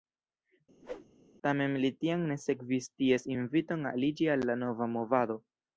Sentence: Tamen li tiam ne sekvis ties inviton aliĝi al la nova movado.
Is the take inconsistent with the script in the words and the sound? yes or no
yes